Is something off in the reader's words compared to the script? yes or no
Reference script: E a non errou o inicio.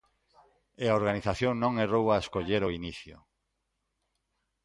yes